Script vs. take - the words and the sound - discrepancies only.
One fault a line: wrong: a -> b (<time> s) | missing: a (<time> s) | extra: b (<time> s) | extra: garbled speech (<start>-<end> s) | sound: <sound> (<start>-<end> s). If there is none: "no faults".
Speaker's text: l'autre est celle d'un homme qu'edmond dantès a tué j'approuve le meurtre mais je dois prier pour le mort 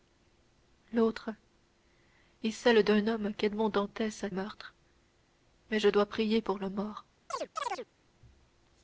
missing: tué j'approuve le (4.3 s)
sound: chirp (7.3-7.9 s)